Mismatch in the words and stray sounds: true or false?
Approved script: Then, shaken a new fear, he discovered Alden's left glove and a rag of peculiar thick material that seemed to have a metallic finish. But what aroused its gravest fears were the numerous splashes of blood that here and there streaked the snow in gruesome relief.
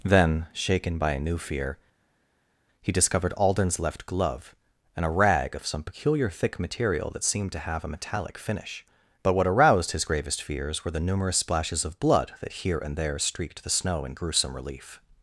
true